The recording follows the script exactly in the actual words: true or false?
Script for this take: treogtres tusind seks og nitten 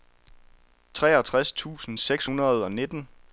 false